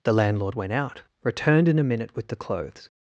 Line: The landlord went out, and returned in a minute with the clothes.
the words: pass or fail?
fail